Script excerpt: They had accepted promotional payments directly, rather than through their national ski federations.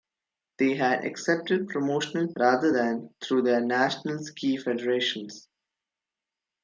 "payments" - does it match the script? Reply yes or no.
no